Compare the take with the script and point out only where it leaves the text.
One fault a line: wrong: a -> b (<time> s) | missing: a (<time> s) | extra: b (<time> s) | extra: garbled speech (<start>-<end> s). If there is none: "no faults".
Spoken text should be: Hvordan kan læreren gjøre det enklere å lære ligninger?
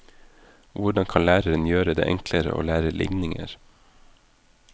no faults